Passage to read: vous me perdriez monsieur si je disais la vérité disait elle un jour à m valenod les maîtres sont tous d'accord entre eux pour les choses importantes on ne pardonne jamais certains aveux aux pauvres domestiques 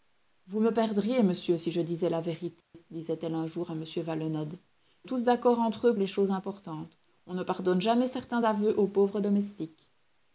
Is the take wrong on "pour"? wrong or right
wrong